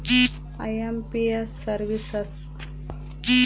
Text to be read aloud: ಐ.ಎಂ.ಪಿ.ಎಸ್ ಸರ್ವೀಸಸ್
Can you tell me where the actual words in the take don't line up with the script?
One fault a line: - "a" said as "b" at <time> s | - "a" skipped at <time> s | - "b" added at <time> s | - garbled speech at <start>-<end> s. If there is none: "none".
none